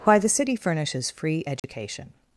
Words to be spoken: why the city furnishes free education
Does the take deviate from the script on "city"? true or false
false